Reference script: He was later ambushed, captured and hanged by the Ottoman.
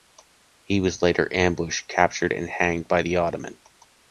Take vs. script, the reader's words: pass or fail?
pass